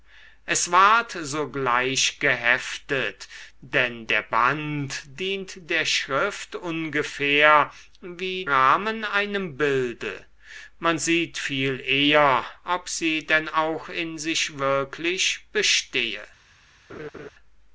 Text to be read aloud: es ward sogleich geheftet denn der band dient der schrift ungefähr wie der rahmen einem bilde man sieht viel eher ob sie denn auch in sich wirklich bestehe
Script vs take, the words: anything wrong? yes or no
yes